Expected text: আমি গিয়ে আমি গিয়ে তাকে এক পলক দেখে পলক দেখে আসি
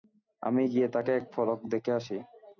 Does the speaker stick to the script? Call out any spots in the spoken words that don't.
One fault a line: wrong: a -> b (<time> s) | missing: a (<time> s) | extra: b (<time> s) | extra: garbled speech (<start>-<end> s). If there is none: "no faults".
missing: আমি গিয়ে (0.9 s)
missing: পলক দেখে (1.9 s)